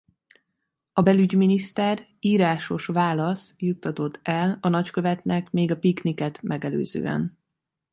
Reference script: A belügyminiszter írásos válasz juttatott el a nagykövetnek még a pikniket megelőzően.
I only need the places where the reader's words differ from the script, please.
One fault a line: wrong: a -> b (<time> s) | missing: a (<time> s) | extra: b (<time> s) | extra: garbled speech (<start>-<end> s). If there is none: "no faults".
no faults